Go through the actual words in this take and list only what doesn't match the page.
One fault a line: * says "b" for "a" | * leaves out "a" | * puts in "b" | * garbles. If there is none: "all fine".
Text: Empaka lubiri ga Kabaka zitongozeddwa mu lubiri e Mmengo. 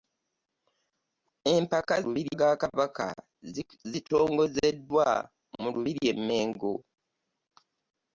all fine